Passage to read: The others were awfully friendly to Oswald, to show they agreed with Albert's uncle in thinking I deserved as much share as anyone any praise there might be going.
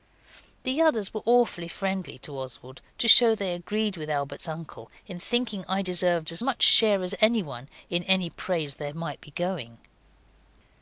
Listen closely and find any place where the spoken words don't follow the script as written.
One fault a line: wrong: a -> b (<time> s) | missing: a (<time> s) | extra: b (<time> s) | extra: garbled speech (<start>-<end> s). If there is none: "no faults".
extra: in (7.9 s)